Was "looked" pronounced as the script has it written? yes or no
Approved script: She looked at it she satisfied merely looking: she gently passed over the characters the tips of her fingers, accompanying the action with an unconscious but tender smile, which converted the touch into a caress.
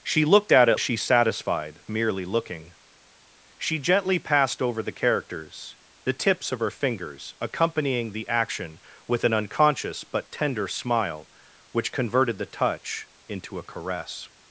yes